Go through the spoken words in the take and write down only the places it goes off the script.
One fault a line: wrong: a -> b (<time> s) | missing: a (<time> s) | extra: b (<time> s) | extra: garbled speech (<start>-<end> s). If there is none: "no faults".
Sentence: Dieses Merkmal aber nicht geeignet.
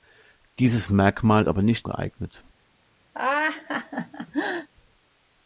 no faults